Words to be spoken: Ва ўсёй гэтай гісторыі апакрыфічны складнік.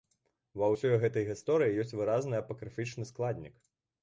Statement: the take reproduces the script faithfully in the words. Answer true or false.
false